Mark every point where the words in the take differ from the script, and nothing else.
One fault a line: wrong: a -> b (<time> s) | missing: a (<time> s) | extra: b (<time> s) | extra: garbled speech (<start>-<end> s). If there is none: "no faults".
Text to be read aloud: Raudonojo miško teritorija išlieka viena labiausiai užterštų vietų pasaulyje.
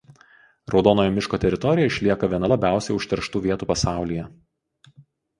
no faults